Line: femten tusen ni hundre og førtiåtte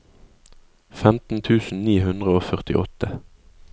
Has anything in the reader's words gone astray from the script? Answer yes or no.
no